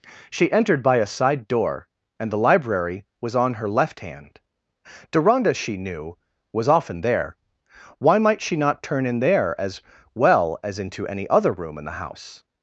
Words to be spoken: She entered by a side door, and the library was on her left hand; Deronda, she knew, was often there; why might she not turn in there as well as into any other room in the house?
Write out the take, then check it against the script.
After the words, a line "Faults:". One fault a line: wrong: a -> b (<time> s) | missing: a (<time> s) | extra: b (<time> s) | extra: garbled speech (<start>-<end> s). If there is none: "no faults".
She entered by a side door, and the library was on her left hand; Deronda, she knew, was often there; why might she not turn in there as well as into any other room in the house?
Faults:
no faults